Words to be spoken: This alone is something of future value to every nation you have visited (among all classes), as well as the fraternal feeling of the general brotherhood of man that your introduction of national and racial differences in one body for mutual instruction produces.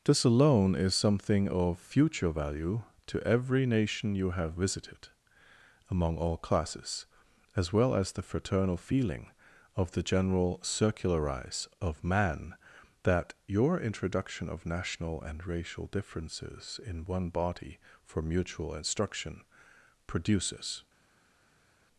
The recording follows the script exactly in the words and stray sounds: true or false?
false